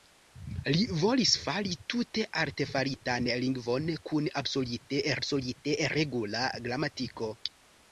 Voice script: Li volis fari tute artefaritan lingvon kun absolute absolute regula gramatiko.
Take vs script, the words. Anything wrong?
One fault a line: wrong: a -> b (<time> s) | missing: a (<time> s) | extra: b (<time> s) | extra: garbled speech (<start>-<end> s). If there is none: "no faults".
no faults